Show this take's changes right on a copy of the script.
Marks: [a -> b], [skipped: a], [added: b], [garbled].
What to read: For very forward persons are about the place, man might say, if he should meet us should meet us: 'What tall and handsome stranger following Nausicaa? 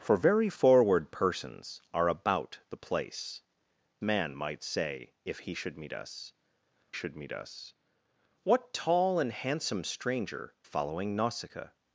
For very forward persons are about the place, man might say, if he should meet us should meet us: 'What tall and handsome stranger following Nausicaa?